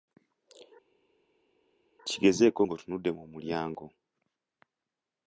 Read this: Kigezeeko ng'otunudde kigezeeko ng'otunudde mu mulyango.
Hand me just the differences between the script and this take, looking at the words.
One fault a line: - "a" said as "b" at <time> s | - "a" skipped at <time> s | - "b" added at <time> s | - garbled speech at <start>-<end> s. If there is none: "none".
- "kigezeeko ng'otunudde" skipped at 3.1 s